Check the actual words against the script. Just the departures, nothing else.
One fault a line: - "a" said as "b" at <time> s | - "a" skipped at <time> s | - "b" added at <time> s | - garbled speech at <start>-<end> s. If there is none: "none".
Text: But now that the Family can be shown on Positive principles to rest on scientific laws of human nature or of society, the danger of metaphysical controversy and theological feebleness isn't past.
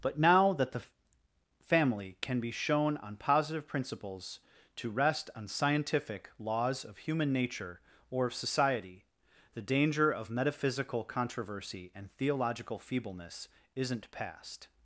none